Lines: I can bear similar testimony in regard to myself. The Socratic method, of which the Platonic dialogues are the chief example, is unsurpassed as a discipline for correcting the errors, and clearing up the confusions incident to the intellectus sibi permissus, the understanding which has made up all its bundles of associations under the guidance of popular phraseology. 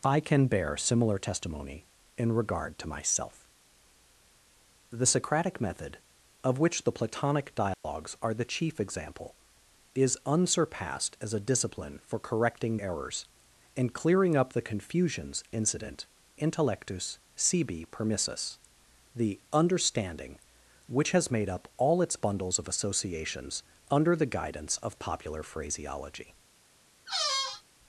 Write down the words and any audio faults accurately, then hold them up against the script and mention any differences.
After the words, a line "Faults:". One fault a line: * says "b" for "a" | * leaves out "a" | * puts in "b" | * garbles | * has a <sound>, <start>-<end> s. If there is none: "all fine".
I can bear similar testimony in regard to myself. The Socratic method, of which the Platonic dialogues are the chief example, is unsurpassed as a discipline for correcting errors, and clearing up the confusions incident intellectus sibi permissus, the understanding which has made up all its bundles of associations under the guidance of popular phraseology.
Faults:
* has a dropout, 7.7-7.8 s
* leaves out "the"
* leaves out "to the"
* has a squeak, 27.1-27.6 s